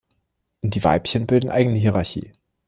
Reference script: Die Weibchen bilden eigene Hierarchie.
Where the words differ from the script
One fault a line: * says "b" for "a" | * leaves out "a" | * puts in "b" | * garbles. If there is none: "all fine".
all fine